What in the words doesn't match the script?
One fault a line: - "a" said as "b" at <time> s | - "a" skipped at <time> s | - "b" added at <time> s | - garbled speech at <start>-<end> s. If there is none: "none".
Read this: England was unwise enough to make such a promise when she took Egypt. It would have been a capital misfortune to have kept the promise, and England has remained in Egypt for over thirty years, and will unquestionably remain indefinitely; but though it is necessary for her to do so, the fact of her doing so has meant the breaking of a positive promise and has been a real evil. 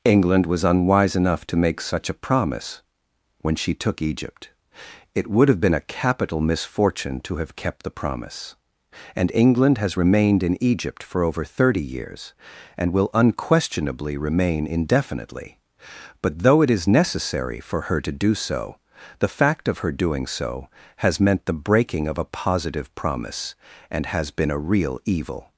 none